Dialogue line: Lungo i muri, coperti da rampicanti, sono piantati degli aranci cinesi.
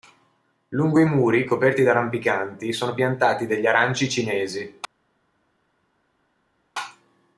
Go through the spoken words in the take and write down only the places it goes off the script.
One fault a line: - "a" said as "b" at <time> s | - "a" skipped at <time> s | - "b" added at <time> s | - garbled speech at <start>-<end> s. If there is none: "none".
none